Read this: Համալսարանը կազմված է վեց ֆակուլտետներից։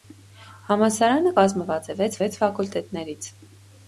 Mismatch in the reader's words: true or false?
true